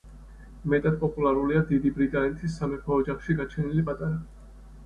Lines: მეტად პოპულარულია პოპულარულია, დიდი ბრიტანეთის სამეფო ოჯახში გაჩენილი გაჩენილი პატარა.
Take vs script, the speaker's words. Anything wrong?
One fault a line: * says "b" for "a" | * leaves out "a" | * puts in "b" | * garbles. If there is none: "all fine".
* leaves out "პოპულარულია"
* leaves out "გაჩენილი"